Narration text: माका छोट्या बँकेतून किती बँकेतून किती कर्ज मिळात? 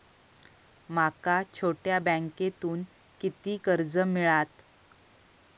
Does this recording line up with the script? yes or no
no